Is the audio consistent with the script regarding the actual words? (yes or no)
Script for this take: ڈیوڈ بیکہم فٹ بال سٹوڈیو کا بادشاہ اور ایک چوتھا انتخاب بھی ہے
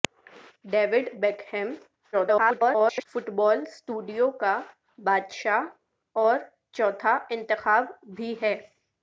no